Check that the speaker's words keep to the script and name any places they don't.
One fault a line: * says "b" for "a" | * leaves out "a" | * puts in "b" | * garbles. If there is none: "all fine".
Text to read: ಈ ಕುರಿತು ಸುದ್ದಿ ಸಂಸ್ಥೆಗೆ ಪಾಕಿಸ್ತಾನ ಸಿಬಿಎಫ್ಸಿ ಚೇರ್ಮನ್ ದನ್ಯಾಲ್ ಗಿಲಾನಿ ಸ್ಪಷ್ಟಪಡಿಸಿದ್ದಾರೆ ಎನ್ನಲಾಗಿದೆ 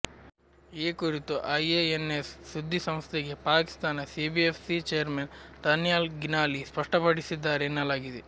* puts in "ಐಎಎನ್ಎಸ್"